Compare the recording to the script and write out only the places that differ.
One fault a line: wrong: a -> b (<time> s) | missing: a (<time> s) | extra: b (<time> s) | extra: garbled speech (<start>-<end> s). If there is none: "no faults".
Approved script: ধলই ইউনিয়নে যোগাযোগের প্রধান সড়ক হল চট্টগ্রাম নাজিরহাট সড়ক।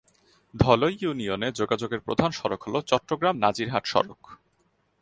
no faults